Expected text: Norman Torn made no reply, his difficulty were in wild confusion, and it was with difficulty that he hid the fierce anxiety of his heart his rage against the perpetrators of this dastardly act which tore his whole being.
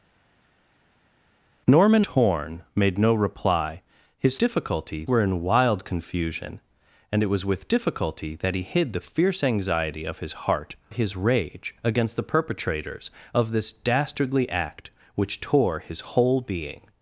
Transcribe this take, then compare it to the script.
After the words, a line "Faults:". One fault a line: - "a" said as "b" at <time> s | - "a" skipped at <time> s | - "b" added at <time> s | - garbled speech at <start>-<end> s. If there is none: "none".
Norman Torn made no reply, his difficulty were in wild confusion, and it was with difficulty that he hid the fierce anxiety of his heart his rage against the perpetrators of this dastardly act which tore his whole being.
Faults:
none